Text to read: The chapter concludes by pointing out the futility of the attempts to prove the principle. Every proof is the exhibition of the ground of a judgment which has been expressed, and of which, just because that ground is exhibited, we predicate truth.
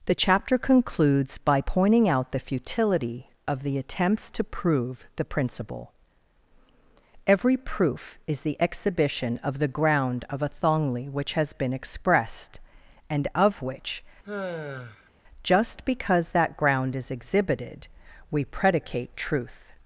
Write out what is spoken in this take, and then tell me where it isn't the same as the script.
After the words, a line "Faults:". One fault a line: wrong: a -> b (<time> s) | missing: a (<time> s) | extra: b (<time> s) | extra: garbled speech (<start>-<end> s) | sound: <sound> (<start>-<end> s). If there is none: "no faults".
The chapter concludes by pointing out the futility of the attempts to prove the principle. Every proof is the exhibition of the ground of a thongli which has been expressed, and of which, just because that ground is exhibited, we predicate truth.
Faults:
wrong: judgment -> thongli (10.5 s)
sound: sigh (14.2-15.1 s)